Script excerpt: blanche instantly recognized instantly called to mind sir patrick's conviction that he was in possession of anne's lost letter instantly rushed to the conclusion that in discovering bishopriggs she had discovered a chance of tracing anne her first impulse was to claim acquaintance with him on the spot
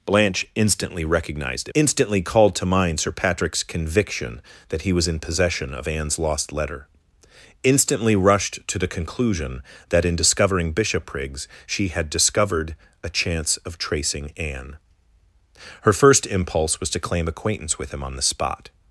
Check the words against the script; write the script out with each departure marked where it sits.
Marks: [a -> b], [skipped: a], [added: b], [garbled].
blanche instantly recognized instantly called to mind sir patrick's conviction that he was in possession of anne's lost letter instantly rushed to the conclusion that in discovering bishopriggs she had discovered a chance of tracing anne her first impulse was to claim acquaintance with him on the spot